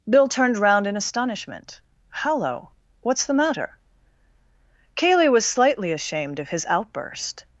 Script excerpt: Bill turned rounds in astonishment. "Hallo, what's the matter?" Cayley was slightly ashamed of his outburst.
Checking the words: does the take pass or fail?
fail